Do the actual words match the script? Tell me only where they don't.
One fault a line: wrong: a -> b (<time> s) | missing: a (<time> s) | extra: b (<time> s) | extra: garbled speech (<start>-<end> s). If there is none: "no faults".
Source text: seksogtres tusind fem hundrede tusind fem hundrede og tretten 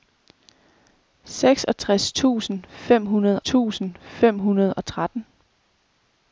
no faults